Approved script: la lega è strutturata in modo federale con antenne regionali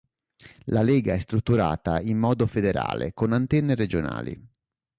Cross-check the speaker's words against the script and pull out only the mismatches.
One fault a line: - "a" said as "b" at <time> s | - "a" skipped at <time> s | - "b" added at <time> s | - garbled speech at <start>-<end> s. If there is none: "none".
none